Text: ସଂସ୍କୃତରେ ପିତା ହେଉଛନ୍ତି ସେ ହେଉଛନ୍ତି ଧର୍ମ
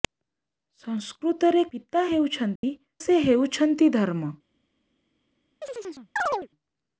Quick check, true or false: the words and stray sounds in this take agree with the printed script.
false